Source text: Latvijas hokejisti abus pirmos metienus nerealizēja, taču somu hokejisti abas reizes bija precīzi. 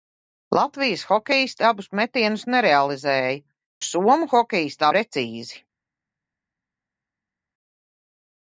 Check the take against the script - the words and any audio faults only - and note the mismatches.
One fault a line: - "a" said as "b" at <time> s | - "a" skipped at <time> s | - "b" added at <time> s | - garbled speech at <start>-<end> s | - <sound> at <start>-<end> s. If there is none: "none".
- "pirmos" skipped at 1.9 s
- "taču" skipped at 3.3 s
- "abas reizes bija" skipped at 4.9 s